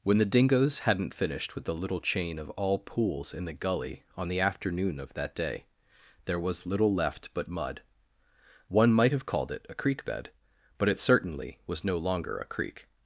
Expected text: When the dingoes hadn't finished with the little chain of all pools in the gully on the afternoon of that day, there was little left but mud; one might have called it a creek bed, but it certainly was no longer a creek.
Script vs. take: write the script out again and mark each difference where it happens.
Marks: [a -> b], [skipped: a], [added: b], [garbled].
When the dingoes hadn't finished with the little chain of all pools in the gully on the afternoon of that day, there was little left but mud; one might have called it a creek bed, but it certainly was no longer a creek.